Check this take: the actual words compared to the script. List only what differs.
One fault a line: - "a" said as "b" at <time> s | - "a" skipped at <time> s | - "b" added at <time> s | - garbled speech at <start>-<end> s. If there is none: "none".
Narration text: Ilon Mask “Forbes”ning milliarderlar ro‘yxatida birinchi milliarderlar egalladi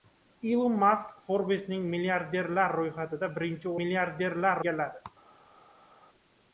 none